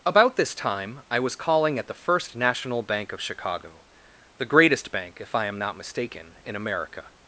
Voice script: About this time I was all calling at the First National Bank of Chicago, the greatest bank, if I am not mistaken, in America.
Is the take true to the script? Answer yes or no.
no